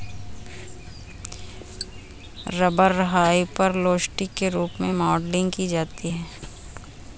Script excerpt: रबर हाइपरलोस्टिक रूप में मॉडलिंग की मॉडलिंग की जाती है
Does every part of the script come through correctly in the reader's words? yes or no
no